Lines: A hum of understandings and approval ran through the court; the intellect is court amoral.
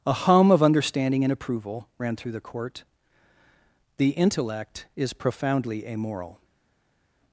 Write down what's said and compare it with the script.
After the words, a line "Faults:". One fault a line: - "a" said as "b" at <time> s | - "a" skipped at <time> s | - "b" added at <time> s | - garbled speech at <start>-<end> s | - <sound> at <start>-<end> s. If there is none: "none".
A hum of understanding and approval ran through the court; the intellect is profoundly amoral.
Faults:
- "understandings" said as "understanding" at 0.6 s
- "court" said as "profoundly" at 5.1 s